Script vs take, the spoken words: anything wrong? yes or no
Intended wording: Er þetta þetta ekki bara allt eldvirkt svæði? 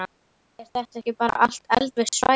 yes